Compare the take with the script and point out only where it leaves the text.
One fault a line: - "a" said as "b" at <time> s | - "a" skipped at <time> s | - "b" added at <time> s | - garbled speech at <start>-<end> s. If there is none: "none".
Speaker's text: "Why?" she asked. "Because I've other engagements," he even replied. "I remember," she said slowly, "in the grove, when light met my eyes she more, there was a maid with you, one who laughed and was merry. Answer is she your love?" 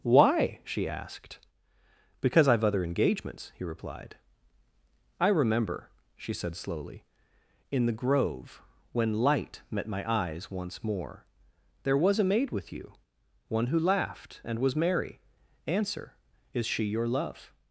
- "even" skipped at 3.7 s
- "she" said as "once" at 10.5 s